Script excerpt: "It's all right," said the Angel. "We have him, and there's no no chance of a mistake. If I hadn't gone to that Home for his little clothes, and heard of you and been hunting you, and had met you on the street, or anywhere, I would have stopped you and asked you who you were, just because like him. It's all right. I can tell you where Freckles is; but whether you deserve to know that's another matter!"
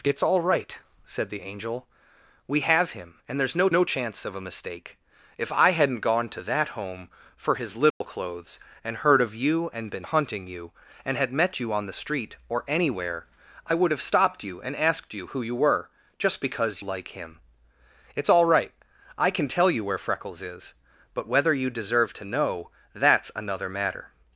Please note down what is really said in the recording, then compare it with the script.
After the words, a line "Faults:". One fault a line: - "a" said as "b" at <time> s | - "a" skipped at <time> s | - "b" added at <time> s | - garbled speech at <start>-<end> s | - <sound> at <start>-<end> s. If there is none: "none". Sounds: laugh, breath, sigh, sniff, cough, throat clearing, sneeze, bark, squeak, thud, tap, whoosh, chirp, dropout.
"It's all right," said the Angel. "We have him, and there's no no chance of a mistake. If I hadn't gone to that Home for his little clothes, and heard of you and been hunting you, and had met you on the street, or anywhere, I would have stopped you and asked you who you were, just because like him. It's all right. I can tell you where Freckles is; but whether you deserve to know that's another matter!"
Faults:
- dropout at 7.9-8.0 s